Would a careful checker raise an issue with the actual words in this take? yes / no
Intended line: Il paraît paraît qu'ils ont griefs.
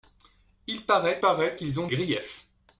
no